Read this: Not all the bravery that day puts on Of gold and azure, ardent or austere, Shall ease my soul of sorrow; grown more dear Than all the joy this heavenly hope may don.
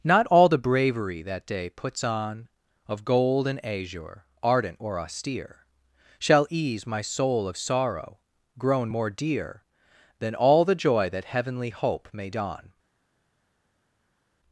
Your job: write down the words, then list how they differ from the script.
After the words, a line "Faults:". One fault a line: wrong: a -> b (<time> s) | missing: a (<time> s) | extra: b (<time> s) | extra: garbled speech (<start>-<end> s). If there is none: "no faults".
Not all the bravery that day puts on Of gold and azure, ardent or austere, Shall ease my soul of sorrow; grown more dear Than all the joy that heavenly hope may don.
Faults:
wrong: this -> that (11.1 s)